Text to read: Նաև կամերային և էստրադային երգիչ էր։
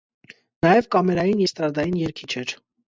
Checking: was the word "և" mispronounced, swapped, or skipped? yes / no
yes